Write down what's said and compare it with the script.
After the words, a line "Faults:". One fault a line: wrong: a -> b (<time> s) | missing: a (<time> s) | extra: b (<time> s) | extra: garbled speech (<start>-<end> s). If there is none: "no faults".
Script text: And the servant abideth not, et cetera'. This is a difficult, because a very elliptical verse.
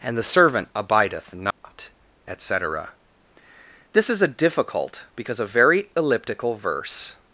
And the servant abideth not, et cetera'. This is a difficult, because a very elliptical verse.
Faults:
no faults